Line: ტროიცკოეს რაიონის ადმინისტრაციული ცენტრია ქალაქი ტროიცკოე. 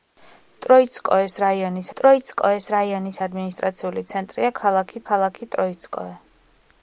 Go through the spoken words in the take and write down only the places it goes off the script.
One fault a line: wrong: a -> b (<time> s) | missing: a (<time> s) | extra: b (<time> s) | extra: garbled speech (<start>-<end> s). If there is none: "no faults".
extra: ტროიცკოეს რაიონის (2.0 s)
extra: ქალაქი (5.1 s)